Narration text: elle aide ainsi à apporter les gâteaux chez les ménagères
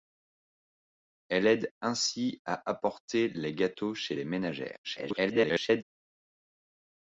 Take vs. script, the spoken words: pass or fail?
fail